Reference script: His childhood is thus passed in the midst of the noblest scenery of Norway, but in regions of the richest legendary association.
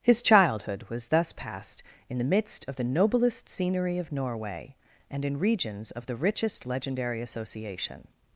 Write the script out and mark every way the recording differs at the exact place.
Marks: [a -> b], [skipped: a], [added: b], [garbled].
His childhood [is -> was] thus passed in the midst of the noblest scenery of Norway, [but -> and] in regions of the richest legendary association.